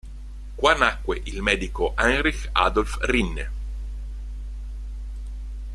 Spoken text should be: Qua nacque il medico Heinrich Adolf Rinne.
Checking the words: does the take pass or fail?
pass